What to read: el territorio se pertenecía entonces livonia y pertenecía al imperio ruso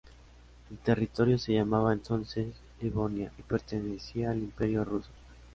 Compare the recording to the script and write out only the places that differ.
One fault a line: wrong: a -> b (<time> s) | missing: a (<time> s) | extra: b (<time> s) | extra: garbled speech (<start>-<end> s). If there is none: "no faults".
wrong: pertenecía -> llamaba (1.5 s)